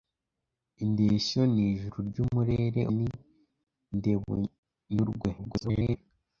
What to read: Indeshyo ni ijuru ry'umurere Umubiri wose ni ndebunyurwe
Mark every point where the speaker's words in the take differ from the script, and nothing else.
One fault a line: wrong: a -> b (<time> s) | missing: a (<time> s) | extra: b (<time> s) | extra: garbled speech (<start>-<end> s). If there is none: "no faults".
missing: Umubiri wose (2.8 s)
extra: garbled speech (5.4-6.0 s)